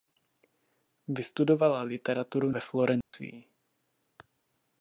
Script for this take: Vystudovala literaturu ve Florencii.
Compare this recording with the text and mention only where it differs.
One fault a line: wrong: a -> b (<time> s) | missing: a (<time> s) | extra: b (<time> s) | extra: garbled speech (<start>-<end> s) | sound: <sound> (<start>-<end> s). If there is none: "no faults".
sound: dropout (3.0-3.1 s)